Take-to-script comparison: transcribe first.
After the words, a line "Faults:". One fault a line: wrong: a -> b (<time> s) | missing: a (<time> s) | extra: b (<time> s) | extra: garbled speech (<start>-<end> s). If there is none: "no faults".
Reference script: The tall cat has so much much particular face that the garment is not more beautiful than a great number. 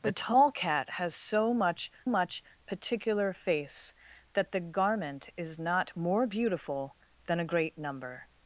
The tall cat has so much much particular face that the garment is not more beautiful than a great number.
Faults:
no faults